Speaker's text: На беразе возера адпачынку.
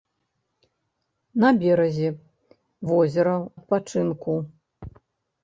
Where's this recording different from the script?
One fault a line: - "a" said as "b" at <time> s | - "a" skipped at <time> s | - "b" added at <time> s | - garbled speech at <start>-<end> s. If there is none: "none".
none